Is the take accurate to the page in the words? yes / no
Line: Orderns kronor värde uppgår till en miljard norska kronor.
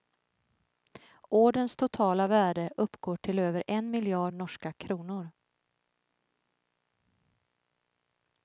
no